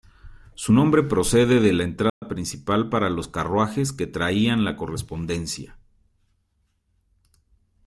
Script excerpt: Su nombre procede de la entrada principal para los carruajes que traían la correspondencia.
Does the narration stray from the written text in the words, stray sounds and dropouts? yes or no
yes